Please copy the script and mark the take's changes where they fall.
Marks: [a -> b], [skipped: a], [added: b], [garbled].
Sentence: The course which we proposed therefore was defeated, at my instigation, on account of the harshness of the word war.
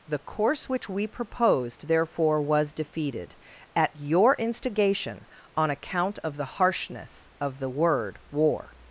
The course which we proposed therefore was defeated, at [my -> your] instigation, on account of the harshness of the word war.